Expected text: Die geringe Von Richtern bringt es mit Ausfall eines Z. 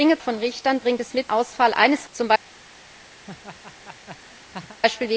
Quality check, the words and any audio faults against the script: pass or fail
fail